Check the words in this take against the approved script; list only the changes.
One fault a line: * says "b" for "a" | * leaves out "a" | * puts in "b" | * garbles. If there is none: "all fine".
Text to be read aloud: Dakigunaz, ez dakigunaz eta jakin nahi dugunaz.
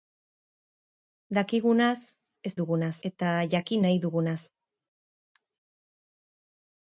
* says "dugunaz" for "dakigunaz"